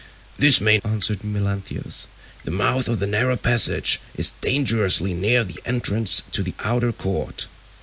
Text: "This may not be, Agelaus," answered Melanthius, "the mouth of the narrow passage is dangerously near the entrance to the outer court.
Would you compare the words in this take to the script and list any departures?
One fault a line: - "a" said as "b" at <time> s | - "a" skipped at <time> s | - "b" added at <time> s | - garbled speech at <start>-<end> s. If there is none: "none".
- "not be Agelaus" skipped at 0.8 s